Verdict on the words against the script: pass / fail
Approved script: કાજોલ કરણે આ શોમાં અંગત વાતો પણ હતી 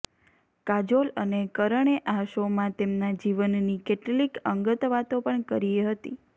fail